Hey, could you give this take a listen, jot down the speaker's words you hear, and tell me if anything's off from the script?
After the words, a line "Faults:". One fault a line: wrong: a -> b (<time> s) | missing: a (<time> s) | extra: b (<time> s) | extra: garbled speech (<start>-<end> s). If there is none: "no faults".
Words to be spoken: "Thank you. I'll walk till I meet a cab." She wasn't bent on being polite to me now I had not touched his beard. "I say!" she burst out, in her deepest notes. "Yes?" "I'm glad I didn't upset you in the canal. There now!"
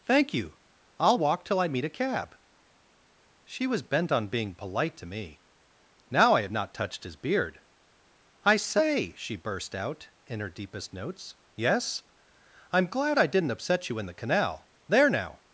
"Thank you. I'll walk till I meet a cab." She was bent on being polite to me now I had not touched his beard. "I say!" she burst out, in her deepest notes. "Yes?" "I'm glad I didn't upset you in the canal. There now!"
Faults:
wrong: wasn't -> was (3.7 s)